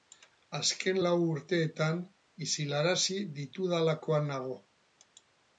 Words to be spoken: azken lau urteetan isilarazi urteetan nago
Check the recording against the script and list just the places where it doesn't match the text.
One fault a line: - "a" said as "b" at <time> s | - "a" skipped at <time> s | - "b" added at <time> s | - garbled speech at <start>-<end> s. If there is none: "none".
- "urteetan" said as "ditudalakoan" at 3.4 s